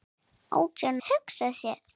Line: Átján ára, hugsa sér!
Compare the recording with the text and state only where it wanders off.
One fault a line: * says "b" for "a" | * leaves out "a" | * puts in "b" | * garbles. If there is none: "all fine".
* leaves out "ára"